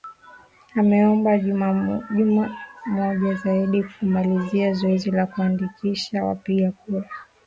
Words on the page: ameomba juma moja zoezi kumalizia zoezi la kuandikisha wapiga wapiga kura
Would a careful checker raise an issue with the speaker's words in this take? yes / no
yes